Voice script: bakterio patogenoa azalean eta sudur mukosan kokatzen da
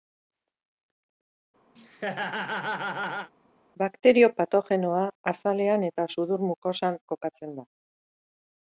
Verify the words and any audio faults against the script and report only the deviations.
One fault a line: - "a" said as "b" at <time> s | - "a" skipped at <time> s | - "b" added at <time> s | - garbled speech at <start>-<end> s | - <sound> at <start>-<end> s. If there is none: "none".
- laugh at 1.8-3.3 s